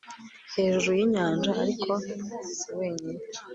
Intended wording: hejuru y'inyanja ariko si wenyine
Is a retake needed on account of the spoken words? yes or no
no